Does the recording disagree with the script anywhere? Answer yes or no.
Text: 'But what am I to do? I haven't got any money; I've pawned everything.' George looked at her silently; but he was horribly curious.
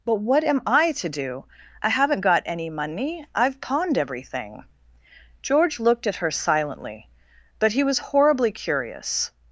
no